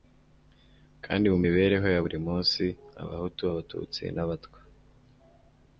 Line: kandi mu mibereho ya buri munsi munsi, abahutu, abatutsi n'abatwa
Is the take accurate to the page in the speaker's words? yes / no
no